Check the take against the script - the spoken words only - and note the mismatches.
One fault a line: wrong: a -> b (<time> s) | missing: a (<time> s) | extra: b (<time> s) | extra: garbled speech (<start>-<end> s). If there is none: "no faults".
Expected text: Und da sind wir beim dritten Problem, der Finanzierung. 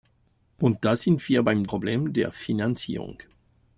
missing: dritten (1.7 s)